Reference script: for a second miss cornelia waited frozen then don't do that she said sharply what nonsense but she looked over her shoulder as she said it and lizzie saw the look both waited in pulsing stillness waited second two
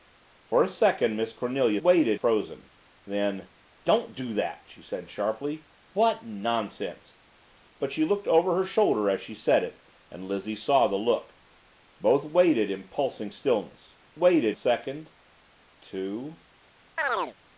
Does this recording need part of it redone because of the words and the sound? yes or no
yes